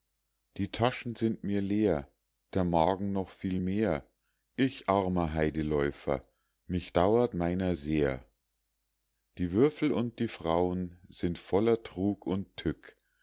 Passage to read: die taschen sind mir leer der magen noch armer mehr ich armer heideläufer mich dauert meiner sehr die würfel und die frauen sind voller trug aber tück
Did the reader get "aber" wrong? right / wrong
wrong